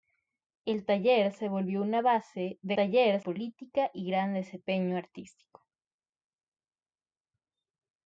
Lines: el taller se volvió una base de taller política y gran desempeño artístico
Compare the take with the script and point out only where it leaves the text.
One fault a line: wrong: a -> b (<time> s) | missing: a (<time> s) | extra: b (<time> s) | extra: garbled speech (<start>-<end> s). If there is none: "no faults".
no faults